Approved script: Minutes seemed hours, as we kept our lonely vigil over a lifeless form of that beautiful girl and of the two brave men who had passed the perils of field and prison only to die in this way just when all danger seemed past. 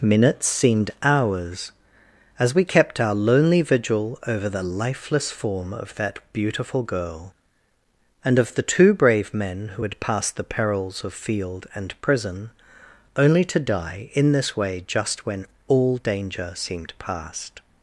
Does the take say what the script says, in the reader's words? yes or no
no